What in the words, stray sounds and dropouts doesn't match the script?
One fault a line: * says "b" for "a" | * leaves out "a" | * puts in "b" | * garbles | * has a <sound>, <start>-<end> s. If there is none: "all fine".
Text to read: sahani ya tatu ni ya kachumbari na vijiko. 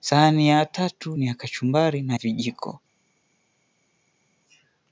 all fine